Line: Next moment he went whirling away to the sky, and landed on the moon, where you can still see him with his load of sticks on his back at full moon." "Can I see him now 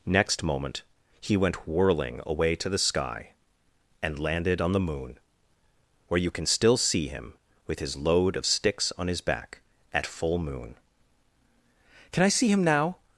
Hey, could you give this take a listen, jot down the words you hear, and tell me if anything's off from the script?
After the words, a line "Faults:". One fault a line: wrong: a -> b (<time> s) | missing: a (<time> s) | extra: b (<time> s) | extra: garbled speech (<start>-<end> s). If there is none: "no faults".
Next moment he went whirling away to the sky, and landed on the moon, where you can still see him with his load of sticks on his back at full moon." "Can I see him now
Faults:
no faults